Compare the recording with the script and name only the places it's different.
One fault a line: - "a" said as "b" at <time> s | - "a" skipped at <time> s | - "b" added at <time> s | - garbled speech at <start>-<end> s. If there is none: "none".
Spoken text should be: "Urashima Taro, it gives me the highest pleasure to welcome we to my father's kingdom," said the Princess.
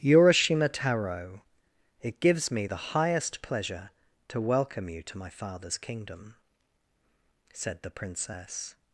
- "we" said as "you" at 4.9 s